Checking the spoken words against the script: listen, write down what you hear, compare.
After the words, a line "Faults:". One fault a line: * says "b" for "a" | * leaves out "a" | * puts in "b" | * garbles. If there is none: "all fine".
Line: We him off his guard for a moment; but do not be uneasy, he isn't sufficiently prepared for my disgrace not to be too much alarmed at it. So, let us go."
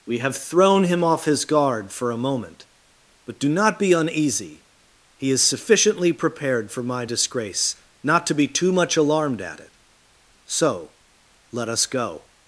We have thrown him off his guard for a moment; but do not be uneasy, he is sufficiently prepared for my disgrace not to be too much alarmed at it. So, let us go."
Faults:
* puts in "have thrown"
* says "is" for "isn't"